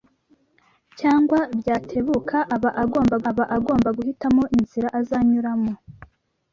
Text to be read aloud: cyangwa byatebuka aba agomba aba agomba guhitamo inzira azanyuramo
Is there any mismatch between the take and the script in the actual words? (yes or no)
no